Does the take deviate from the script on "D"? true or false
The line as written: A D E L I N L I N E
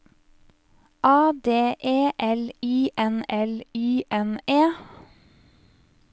false